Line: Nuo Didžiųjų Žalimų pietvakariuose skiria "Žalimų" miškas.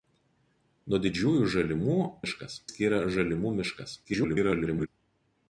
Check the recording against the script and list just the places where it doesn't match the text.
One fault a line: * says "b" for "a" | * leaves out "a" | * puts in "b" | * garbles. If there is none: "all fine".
* says "miškas" for "pietvakariuose"
* garbles